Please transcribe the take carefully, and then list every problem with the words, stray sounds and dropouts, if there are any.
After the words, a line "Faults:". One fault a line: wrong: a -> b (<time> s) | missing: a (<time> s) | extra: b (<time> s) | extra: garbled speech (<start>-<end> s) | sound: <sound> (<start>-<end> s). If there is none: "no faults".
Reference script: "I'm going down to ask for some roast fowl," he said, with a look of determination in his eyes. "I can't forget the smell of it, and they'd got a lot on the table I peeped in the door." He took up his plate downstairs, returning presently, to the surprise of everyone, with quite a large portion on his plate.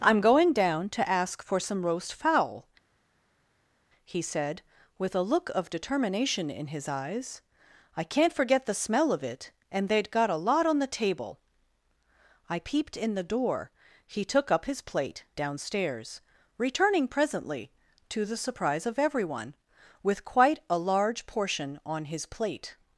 "I'm going down to ask for some roast fowl," he said, with a look of determination in his eyes. "I can't forget the smell of it, and they'd got a lot on the table I peeped in the door." He took up his plate downstairs, returning presently, to the surprise of everyone, with quite a large portion on his plate.
Faults:
no faults